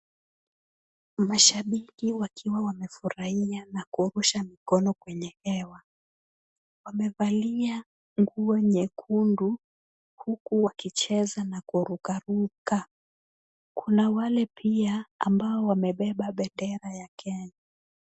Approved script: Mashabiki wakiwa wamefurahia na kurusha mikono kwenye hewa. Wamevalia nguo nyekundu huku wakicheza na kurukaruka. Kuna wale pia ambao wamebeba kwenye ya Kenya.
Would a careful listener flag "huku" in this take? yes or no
no